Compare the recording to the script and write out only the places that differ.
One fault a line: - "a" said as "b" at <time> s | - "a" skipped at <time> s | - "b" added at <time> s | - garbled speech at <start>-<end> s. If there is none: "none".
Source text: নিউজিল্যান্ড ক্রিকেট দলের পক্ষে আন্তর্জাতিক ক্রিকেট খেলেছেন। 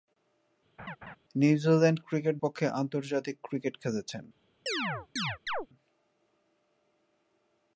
- "দলের" skipped at 2.3 s